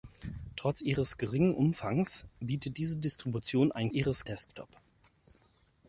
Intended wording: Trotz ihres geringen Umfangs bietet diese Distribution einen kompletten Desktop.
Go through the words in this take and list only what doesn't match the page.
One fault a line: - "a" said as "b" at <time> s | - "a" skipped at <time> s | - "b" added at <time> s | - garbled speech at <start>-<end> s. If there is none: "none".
- "kompletten" said as "ihres" at 3.9 s